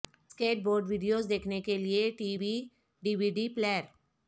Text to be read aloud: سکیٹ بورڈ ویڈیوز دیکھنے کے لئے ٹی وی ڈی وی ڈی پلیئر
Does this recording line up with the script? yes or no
yes